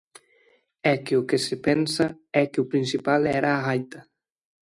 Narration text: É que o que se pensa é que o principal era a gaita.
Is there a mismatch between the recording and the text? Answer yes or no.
no